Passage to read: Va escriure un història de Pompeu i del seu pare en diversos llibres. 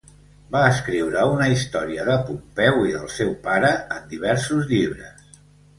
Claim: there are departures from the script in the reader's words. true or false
true